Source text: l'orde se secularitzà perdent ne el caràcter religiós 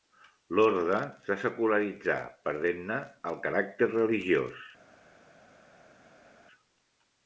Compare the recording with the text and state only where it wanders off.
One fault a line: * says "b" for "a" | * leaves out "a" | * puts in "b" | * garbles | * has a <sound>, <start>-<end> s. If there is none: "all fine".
all fine